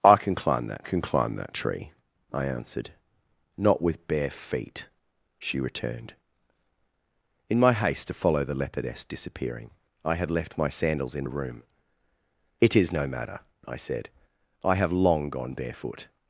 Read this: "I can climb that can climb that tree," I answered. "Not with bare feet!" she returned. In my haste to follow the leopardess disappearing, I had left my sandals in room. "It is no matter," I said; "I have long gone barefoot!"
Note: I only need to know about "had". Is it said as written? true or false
true